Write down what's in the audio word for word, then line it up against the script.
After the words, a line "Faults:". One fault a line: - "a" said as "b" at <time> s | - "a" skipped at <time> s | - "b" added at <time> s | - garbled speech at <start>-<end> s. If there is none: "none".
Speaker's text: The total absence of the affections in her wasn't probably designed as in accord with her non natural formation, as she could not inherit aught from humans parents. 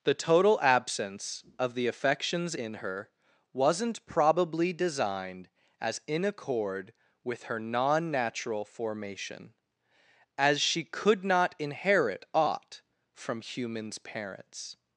The total absence of the affections in her wasn't probably designed as in accord with her non natural formation, as she could not inherit aught from humans parents.
Faults:
none